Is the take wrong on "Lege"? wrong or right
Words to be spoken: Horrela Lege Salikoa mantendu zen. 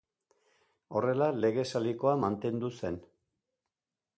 right